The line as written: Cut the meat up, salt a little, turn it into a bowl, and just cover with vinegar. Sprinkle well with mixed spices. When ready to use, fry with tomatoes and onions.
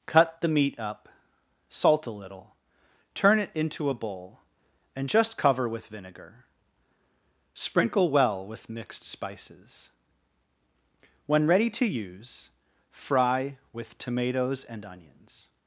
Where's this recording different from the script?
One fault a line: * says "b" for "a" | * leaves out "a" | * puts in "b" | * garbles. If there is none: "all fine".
all fine